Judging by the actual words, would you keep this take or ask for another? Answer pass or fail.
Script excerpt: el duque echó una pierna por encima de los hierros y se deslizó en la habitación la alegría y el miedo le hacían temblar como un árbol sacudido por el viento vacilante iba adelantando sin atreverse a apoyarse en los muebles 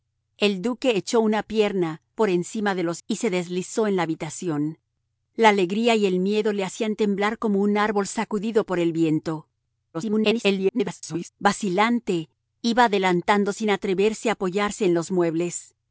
fail